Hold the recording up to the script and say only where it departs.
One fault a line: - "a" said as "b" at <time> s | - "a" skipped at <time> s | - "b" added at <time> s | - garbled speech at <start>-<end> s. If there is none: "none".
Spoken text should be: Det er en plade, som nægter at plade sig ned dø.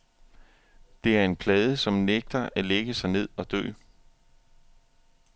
- "plade" said as "lægge" at 2.7 s
- "og" added at 3.4 s